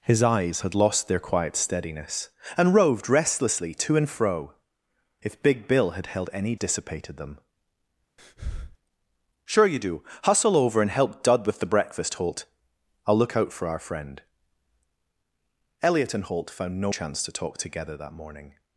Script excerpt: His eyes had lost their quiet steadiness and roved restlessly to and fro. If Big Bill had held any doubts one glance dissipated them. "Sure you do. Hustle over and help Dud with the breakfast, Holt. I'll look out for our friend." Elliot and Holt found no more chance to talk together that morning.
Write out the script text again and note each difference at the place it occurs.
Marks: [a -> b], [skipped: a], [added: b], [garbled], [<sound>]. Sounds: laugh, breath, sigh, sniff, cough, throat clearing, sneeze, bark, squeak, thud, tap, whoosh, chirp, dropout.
His eyes had lost their quiet steadiness and roved restlessly to and fro. If Big Bill had held any [skipped: doubts one glance] dissipated them. [breath] "Sure you do. Hustle over and help Dud with the breakfast, Holt. I'll look out for our friend." Elliot and Holt found no [skipped: more] chance to talk together that morning.